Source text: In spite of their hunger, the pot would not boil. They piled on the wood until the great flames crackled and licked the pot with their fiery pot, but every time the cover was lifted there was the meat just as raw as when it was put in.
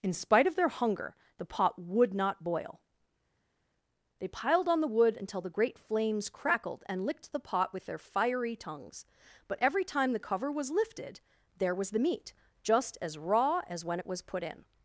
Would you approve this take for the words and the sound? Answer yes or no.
no